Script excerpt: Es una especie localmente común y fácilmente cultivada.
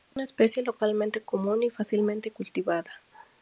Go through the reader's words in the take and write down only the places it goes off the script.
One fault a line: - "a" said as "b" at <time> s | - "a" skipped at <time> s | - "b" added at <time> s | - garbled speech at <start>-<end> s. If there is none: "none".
none